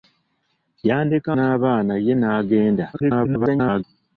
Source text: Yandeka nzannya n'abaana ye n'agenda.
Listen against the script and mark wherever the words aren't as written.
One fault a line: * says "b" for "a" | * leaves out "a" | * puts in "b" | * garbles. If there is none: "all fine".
* leaves out "nzannya"
* garbles